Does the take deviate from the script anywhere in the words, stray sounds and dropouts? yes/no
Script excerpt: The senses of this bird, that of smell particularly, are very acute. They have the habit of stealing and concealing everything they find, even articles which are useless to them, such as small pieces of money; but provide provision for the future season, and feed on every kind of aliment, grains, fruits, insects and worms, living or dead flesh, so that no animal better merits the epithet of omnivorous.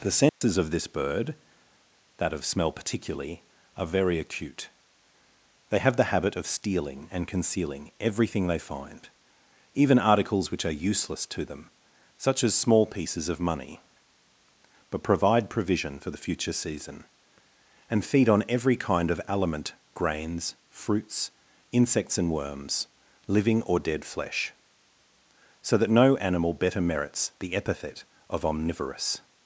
yes